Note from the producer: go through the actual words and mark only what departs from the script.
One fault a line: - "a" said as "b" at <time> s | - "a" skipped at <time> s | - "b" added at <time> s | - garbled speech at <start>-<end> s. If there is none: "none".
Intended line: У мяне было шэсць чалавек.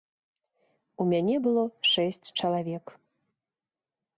none